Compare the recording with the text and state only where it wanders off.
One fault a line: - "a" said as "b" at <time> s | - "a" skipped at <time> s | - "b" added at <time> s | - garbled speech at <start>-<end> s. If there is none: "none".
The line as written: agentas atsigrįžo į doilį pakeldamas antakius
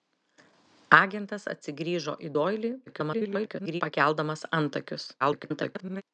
- garbled speech at 2.9-3.8 s
- garbled speech at 5.2-6.0 s